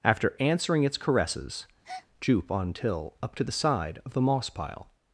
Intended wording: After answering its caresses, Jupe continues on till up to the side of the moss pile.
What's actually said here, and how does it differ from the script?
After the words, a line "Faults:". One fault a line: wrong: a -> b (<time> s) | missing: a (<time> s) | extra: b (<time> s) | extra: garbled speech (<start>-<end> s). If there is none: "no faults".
After answering its caresses, Jupe on till up to the side of the moss pile.
Faults:
missing: continues (2.5 s)